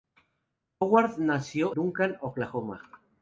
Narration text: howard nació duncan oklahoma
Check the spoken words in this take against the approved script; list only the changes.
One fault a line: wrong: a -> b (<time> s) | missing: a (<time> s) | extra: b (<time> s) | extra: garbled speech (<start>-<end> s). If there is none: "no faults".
no faults